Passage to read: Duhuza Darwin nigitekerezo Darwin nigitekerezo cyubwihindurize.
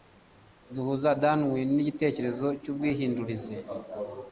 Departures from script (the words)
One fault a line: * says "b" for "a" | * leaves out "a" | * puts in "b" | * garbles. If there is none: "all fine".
* leaves out "Darwin nigitekerezo"